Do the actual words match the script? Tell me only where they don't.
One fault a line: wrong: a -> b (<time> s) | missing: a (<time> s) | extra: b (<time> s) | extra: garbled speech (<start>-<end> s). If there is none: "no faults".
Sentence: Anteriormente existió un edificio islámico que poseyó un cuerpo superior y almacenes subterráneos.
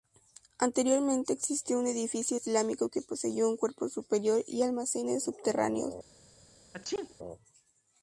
no faults